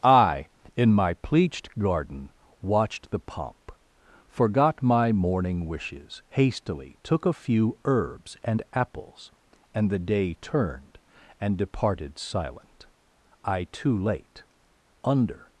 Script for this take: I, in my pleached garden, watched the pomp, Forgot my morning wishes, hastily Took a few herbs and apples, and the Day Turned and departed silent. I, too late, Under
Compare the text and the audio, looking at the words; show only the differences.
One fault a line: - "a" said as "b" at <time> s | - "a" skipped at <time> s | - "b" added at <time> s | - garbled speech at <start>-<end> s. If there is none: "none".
none